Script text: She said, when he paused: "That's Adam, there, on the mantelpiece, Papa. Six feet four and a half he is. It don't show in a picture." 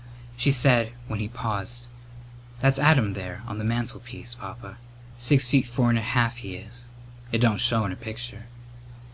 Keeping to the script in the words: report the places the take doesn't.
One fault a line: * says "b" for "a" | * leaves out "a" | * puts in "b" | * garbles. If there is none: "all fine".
all fine